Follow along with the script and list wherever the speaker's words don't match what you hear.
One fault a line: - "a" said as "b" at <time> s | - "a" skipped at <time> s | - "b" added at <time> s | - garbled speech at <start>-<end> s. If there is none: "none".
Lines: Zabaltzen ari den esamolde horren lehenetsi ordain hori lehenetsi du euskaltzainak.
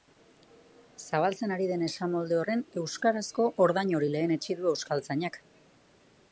- "lehenetsi" said as "euskarazko" at 2.8 s